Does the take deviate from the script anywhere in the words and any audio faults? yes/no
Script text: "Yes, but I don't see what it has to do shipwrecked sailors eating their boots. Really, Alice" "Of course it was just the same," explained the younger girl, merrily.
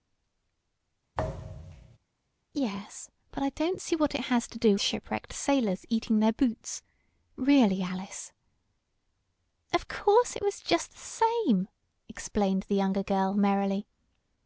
yes